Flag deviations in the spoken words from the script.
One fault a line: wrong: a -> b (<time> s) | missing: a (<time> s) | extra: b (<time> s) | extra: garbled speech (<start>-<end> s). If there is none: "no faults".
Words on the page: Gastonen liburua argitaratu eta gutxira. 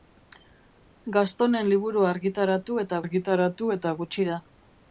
extra: argitaratu eta (3.0 s)